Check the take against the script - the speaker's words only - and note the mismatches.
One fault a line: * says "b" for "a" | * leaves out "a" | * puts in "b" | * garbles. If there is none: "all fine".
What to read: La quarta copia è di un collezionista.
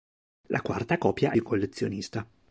all fine